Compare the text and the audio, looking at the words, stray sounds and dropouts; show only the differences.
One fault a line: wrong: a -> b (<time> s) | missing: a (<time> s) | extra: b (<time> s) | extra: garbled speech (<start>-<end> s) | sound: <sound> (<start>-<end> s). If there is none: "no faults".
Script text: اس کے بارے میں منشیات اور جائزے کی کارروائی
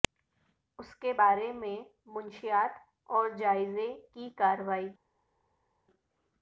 no faults